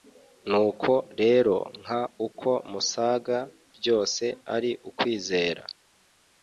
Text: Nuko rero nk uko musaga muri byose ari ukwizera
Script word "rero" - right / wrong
right